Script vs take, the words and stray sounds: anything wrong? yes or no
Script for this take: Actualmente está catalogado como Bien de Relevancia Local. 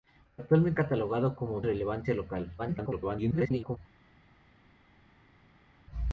yes